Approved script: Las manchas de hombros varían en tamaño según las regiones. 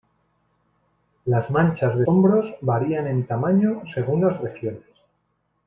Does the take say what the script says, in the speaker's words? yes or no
yes